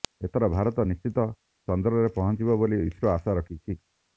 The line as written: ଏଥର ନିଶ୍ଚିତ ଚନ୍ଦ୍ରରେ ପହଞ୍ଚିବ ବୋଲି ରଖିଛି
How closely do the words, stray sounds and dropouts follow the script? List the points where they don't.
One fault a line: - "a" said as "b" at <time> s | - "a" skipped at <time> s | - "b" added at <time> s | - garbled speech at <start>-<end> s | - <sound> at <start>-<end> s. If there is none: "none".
- "ଭାରତ" added at 0.5 s
- "ଇସ୍ରୋ ଆଶା" added at 2.9 s